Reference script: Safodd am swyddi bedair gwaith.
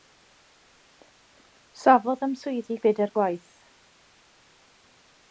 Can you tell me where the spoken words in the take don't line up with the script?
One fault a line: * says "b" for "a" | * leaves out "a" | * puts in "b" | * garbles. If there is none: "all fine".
all fine